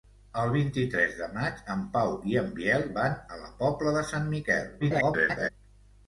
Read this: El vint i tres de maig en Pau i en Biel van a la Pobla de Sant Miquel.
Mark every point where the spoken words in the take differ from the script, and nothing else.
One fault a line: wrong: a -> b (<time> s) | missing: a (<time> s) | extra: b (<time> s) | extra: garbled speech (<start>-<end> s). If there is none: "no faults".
extra: garbled speech (4.8-5.5 s)